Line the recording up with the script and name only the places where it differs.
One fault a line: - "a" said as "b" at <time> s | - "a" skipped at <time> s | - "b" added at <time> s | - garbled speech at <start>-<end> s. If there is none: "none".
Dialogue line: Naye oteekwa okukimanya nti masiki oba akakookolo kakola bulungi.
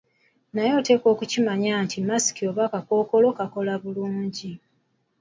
none